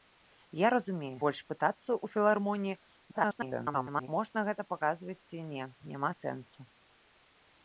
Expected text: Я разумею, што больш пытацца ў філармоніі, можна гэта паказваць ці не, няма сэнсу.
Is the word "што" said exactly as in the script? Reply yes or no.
no